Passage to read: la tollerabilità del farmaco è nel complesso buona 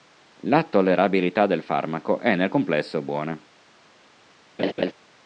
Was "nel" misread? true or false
false